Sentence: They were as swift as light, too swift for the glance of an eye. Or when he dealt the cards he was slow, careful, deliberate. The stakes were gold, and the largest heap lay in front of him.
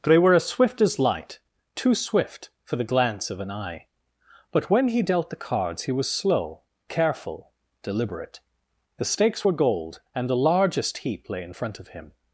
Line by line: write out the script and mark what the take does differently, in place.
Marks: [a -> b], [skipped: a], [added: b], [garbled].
They were as swift as light, too swift for the glance of an eye. [Or -> But] when he dealt the cards he was slow, careful, deliberate. The stakes were gold, and the largest heap lay in front of him.